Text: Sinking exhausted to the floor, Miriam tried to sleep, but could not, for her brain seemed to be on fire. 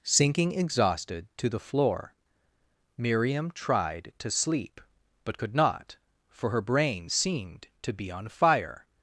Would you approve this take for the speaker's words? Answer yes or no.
yes